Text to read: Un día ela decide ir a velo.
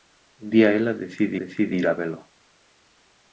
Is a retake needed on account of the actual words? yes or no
yes